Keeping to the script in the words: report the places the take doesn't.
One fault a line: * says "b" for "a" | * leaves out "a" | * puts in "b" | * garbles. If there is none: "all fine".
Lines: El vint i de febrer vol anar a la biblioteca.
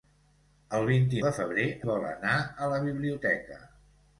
all fine